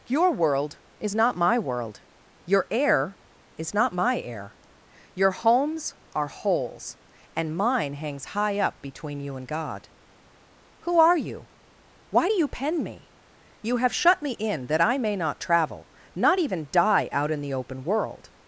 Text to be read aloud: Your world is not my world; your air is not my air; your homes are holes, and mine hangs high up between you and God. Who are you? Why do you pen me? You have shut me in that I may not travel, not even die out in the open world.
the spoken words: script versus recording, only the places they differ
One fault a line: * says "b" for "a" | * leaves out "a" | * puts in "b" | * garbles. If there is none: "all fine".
all fine